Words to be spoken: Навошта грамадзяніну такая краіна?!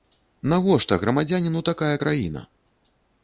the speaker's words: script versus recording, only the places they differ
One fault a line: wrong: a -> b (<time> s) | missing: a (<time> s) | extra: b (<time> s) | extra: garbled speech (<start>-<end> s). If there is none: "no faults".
no faults